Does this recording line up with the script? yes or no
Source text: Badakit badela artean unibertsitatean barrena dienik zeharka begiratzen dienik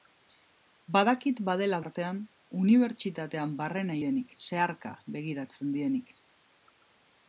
yes